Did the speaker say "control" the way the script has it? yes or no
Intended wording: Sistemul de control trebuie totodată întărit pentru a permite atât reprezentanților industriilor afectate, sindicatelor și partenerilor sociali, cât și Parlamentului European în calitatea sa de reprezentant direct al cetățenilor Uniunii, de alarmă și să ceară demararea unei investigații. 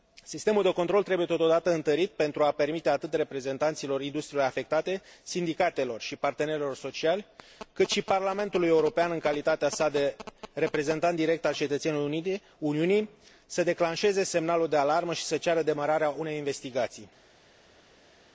yes